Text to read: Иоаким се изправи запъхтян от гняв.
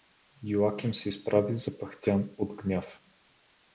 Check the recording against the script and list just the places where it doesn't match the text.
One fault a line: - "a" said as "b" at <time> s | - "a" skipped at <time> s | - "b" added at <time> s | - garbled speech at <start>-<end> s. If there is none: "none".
none